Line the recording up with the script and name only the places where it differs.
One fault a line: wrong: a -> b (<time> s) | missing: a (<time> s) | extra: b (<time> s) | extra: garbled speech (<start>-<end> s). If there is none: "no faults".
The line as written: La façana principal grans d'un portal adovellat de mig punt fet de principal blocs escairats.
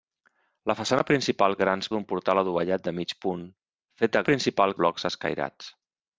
no faults